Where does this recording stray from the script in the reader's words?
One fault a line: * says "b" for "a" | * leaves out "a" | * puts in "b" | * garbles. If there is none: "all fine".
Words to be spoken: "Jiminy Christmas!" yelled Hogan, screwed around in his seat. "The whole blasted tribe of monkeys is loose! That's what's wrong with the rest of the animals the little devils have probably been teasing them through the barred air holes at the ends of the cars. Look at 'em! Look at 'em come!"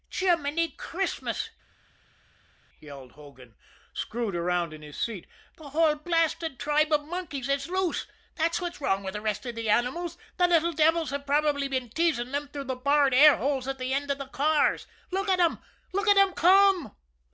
all fine